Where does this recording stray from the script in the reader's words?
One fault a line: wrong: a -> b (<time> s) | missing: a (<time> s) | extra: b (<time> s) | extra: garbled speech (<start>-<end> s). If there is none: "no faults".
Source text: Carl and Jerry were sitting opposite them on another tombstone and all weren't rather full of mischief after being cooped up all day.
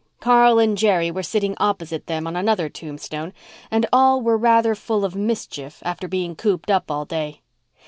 wrong: weren't -> were (4.2 s)